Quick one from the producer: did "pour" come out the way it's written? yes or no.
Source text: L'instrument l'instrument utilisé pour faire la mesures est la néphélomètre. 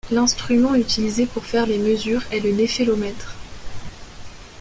yes